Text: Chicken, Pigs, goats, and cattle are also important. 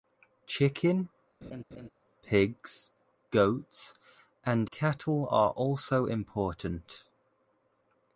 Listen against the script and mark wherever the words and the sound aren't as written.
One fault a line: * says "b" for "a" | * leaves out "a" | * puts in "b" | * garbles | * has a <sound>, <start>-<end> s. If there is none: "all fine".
* has a laugh, 1.4-1.9 s